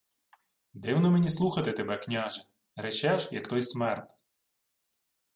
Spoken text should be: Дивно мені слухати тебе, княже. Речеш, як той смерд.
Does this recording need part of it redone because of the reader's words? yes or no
no